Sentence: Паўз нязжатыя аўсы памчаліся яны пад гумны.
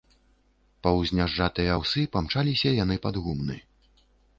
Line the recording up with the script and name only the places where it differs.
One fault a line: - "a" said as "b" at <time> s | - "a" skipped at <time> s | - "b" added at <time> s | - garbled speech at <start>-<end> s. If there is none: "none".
none